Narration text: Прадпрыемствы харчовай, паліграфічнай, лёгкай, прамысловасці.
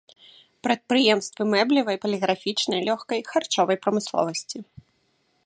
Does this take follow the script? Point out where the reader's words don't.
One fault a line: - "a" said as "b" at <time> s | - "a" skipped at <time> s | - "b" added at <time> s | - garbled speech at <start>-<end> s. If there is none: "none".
- "харчовай" said as "мэблевай" at 1.5 s
- "харчовай" added at 3.3 s